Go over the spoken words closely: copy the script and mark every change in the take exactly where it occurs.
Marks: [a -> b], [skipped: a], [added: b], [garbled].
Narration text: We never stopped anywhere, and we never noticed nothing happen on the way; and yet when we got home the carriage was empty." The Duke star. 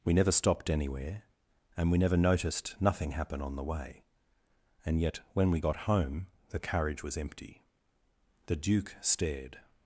We never stopped anywhere, and we never noticed nothing happen on the way; and yet when we got home the carriage was empty." The Duke [star. -> stared]